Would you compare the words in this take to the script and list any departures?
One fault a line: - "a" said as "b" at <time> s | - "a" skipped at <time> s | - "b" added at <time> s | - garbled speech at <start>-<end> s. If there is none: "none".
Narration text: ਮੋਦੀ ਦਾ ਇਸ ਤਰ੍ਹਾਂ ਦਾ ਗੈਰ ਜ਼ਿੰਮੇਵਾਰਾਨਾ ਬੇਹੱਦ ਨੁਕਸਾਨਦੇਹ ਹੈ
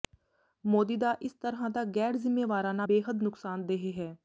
none